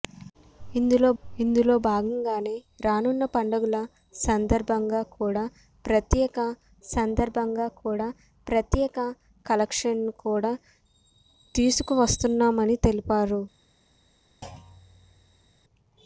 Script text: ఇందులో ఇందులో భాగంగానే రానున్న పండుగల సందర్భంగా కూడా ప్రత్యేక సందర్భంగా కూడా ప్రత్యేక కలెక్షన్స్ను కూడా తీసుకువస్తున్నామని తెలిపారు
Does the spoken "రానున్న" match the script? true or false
true